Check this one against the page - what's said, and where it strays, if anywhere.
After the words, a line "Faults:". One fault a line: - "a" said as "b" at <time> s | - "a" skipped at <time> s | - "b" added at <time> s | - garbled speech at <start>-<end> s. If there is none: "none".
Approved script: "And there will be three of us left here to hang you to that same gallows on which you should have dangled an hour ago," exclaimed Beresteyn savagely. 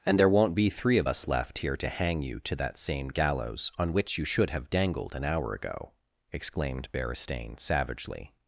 "And there won't be three of us left here to hang you to that same gallows on which you should have dangled an hour ago," exclaimed Beresteyn savagely.
Faults:
- "will" said as "won't" at 0.3 s